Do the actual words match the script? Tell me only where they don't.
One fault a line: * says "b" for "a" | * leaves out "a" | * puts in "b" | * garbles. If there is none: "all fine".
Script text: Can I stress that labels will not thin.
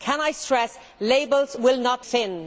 all fine